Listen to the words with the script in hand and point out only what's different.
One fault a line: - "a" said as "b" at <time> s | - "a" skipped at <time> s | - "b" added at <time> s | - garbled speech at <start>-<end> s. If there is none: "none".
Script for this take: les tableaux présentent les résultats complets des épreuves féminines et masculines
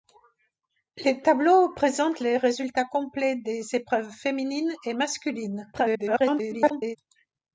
- garbled speech at 5.7-7.0 s